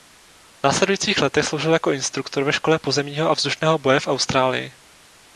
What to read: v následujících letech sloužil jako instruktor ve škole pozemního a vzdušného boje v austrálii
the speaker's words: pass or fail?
pass